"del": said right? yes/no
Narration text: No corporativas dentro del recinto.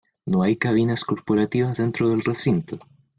yes